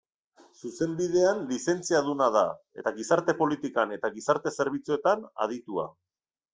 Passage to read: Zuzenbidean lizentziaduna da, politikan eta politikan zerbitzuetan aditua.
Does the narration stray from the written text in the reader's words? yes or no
yes